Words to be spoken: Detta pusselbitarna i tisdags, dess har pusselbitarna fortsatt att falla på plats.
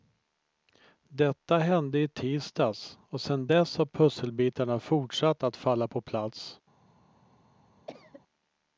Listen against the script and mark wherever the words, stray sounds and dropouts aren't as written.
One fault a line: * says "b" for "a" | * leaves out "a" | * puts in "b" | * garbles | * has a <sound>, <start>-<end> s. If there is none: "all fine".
* says "hände" for "pusselbitarna"
* puts in "och sen"
* has a cough, 7.9-8.2 s